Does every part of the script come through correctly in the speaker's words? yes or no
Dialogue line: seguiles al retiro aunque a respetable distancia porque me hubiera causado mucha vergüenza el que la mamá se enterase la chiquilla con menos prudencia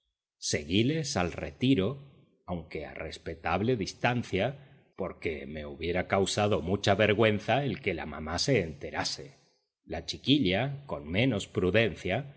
yes